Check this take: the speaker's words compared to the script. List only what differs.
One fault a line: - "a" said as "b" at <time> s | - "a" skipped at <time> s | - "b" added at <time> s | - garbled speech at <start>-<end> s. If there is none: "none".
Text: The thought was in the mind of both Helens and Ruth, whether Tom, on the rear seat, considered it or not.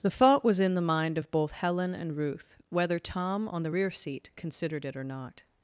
- "Helens" said as "Helen" at 1.5 s